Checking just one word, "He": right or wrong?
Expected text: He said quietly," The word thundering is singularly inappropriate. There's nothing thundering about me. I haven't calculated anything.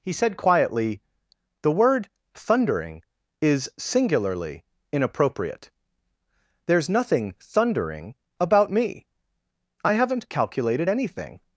right